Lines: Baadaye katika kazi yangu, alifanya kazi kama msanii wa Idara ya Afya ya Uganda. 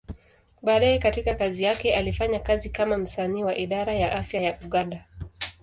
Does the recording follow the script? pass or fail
fail